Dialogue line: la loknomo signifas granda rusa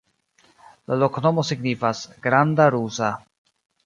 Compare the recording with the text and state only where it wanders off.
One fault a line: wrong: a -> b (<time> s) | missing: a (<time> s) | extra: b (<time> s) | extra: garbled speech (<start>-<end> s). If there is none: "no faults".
no faults